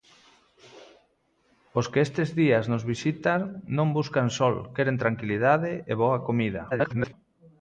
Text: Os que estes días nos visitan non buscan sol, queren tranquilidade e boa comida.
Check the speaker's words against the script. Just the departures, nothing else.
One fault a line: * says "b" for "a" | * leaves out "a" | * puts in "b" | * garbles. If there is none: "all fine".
* garbles